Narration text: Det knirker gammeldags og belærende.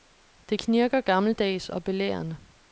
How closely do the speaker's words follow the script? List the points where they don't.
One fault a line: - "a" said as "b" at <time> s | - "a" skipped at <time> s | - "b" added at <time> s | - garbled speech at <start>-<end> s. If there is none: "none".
none